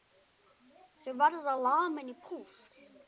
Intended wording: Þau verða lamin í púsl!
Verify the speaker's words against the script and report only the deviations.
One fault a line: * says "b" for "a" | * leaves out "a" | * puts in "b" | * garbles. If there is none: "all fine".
all fine